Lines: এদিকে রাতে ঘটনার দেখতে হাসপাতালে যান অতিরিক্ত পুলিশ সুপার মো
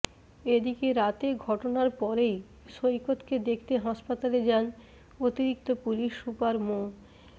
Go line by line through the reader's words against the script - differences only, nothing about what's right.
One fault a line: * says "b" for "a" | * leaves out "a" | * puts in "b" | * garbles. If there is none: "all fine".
* puts in "পরেই সৈকতকে"